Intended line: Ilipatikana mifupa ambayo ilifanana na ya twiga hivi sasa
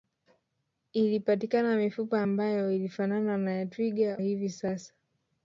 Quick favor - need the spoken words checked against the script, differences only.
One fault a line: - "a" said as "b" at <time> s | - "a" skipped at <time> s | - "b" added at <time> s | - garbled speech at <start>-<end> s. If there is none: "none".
none